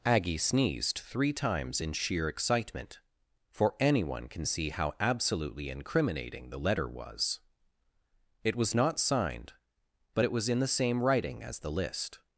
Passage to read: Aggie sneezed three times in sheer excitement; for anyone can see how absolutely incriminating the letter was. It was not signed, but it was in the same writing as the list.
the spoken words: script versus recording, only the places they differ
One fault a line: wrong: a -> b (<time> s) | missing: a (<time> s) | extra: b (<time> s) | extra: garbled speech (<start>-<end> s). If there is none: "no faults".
no faults